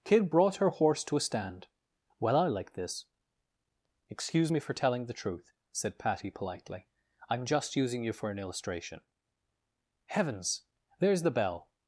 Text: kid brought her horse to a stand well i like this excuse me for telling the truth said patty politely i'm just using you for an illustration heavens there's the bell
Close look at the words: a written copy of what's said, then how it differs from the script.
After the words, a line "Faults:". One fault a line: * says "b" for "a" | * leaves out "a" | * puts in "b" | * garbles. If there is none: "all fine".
kid brought her horse to a stand well i like this excuse me for telling the truth said patty politely i'm just using you for an illustration heavens there's the bell
Faults:
all fine